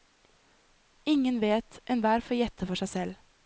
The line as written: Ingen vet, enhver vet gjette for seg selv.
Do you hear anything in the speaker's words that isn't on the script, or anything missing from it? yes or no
yes